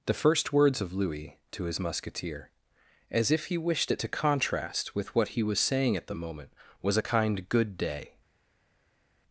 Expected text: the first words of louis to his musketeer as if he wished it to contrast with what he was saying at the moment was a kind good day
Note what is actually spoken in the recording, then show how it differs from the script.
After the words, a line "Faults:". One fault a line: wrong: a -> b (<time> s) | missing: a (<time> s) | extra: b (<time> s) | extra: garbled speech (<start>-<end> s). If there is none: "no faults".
the first words of louis to his musketeer as if he wished it to contrast with what he was saying at the moment was a kind good day
Faults:
no faults